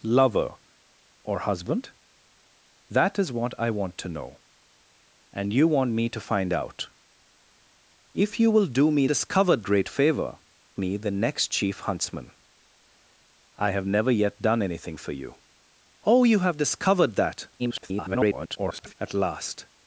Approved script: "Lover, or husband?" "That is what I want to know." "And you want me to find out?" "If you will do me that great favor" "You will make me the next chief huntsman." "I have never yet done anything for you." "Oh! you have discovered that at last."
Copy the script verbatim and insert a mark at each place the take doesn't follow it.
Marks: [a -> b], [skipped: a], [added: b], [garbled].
"Lover, or husband?" "That is what I want to know." "And you want me to find out?" "If you will do me [that -> discovered] great favor" [skipped: "You will make] me the next chief huntsman." "I have never yet done anything for you." "Oh! you have discovered that [garbled] at last."